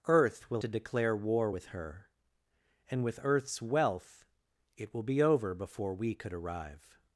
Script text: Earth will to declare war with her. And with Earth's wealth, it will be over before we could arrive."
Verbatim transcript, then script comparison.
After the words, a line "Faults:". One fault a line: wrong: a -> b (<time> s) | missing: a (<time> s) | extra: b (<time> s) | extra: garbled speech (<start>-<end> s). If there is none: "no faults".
Earth will to declare war with her. And with Earth's wealth, it will be over before we could arrive."
Faults:
no faults